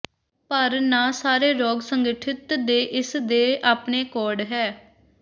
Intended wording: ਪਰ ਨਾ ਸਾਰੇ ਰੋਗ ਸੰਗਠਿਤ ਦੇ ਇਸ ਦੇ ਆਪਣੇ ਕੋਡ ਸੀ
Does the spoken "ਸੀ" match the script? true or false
false